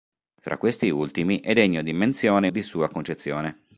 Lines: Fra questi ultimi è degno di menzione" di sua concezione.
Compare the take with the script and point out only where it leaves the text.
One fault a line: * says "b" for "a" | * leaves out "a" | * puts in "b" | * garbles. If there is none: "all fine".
all fine